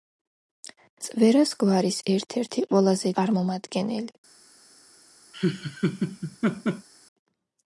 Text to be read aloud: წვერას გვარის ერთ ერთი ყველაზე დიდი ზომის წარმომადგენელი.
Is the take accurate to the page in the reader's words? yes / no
no